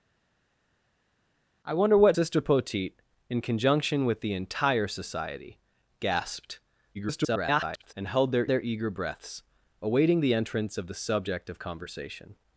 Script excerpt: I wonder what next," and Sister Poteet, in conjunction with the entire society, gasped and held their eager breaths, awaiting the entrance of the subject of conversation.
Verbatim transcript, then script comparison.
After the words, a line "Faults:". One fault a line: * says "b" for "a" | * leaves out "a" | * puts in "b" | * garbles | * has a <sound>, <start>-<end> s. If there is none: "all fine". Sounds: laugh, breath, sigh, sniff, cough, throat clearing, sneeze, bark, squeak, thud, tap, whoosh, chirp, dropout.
I wonder what Sister Poteet, in conjunction with the entire society, gasped [garbled] and held their their eager breaths, awaiting the entrance of the subject of conversation.
Faults:
* leaves out "next and"
* garbles
* puts in "their"